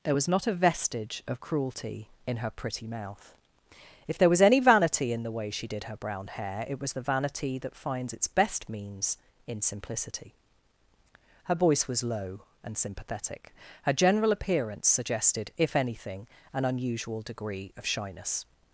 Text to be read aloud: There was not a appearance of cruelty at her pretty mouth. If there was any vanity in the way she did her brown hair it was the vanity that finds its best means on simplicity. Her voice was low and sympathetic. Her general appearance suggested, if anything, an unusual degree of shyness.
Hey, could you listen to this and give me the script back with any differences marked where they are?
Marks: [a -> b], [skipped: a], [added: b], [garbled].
There was not a [appearance -> vestige] of cruelty [at -> in] her pretty mouth. If there was any vanity in the way she did her brown hair it was the vanity that finds its best means [on -> in] simplicity. Her voice was low and sympathetic. Her general appearance suggested, if anything, an unusual degree of shyness.